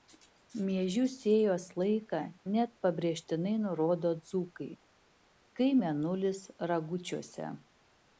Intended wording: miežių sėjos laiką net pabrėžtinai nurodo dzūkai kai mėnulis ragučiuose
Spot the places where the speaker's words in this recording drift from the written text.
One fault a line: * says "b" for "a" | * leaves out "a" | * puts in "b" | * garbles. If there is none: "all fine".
all fine